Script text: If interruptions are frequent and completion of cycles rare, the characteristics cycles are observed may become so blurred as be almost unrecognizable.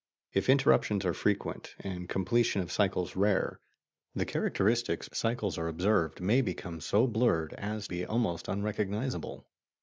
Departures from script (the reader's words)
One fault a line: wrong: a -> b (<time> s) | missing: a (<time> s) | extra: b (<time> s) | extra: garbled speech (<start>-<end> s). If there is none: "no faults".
no faults